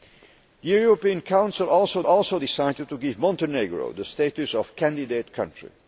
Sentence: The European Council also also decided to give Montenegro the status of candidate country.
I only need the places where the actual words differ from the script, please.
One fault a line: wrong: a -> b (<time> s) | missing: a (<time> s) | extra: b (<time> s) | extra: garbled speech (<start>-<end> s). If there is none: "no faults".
no faults